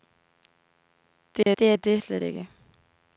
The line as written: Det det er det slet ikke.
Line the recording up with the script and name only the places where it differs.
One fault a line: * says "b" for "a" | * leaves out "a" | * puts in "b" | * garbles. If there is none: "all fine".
all fine